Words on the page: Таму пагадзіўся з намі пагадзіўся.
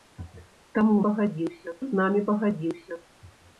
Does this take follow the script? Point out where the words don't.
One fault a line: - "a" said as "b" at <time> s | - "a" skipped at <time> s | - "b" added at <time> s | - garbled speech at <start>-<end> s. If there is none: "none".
none